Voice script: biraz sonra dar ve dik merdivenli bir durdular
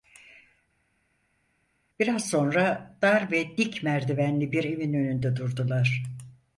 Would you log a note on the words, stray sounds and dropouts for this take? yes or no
yes